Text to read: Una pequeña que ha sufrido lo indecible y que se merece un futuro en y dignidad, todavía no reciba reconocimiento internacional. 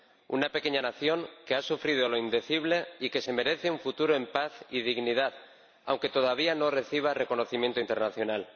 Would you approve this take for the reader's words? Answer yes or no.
no